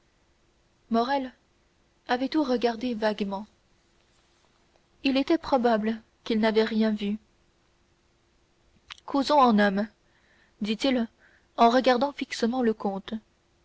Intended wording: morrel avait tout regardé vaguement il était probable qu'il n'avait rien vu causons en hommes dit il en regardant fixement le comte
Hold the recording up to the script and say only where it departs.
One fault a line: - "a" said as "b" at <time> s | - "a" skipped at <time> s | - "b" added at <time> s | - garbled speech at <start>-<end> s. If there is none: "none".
none